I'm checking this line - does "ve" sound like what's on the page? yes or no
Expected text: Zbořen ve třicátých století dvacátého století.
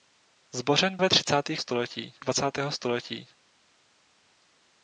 yes